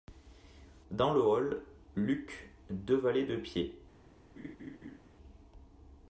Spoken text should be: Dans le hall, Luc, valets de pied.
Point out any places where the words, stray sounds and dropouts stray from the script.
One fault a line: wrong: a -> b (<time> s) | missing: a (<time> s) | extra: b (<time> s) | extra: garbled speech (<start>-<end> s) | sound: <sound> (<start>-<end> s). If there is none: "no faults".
extra: deux (2.7 s)
sound: laugh (4.4-5.0 s)